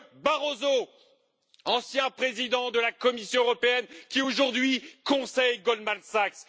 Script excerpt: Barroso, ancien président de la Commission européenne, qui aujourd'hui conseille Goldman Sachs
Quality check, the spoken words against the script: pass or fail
pass